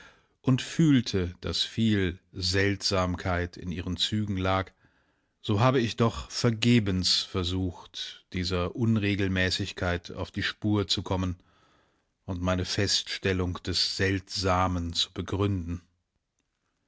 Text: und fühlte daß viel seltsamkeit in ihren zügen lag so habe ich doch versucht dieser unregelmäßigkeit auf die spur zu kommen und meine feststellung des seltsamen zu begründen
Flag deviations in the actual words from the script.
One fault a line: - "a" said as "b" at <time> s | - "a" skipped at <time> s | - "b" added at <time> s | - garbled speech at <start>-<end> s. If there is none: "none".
- "vergebens" added at 6.3 s